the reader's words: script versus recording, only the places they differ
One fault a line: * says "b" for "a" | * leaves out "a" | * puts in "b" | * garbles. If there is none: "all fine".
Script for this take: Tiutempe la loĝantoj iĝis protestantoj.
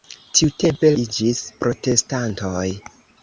* leaves out "la loĝantoj"